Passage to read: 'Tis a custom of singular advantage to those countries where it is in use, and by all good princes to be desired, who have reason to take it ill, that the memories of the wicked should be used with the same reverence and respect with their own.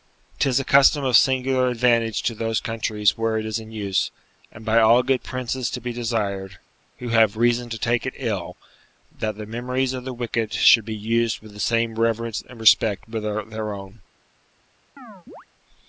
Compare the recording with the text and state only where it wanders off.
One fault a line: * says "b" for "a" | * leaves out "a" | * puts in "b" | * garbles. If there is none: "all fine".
all fine